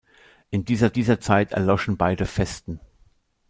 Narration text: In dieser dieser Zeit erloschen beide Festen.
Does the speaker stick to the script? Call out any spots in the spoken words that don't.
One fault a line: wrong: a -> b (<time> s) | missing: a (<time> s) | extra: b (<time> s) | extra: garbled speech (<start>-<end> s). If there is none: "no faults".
no faults